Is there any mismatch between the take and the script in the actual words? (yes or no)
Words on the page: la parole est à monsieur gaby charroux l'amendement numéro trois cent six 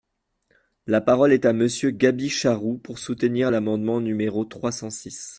yes